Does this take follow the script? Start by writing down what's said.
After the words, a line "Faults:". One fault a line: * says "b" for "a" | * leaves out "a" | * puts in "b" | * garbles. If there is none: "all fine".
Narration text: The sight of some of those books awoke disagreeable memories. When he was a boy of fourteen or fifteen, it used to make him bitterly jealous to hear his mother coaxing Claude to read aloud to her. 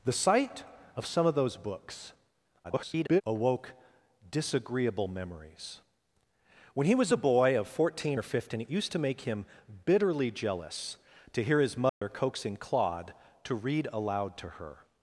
The sight of some of those books [garbled] awoke disagreeable memories. When he was a boy of fourteen or fifteen, it used to make him bitterly jealous to hear his mother coaxing Claude to read aloud to her.
Faults:
* garbles